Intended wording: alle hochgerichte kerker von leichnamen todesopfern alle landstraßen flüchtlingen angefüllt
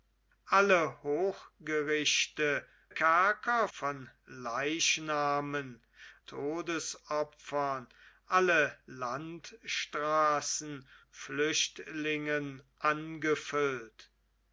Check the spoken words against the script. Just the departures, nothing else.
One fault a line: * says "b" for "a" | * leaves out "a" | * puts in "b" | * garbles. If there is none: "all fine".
all fine